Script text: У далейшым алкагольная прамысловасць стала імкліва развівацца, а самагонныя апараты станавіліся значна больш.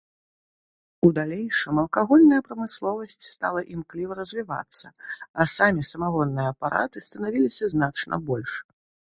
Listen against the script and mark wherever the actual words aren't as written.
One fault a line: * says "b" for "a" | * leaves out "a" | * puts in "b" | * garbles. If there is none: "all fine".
* puts in "самі"